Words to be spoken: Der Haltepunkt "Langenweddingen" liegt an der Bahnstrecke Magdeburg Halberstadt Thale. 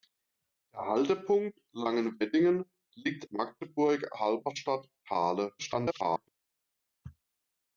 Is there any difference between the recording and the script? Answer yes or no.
yes